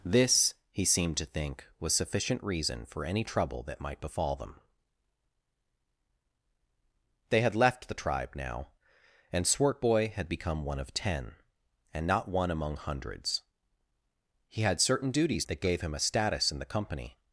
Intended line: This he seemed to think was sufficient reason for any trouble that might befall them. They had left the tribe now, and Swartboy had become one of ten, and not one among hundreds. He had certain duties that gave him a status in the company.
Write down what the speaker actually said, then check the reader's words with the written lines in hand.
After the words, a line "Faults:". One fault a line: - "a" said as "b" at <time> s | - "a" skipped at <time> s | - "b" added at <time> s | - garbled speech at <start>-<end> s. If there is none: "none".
This he seemed to think was sufficient reason for any trouble that might befall them. They had left the tribe now, and Swartboy had become one of ten, and not one among hundreds. He had certain duties that gave him a status in the company.
Faults:
none